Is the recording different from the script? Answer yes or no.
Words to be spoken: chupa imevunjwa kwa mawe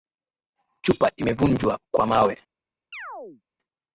no